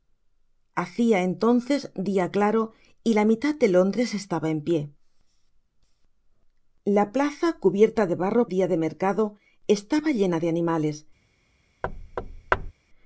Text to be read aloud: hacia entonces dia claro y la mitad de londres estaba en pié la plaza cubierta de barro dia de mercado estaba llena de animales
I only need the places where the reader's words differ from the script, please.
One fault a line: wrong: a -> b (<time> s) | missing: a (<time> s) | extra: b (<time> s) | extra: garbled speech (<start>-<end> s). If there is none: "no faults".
no faults